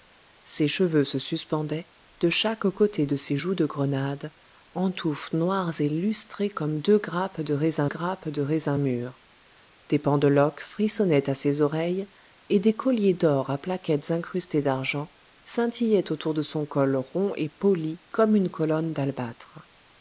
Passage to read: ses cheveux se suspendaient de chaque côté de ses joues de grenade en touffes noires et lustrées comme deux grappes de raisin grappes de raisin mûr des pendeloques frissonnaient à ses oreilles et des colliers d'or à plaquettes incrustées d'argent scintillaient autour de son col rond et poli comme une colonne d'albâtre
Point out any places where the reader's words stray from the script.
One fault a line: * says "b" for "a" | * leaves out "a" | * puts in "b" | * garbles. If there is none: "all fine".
all fine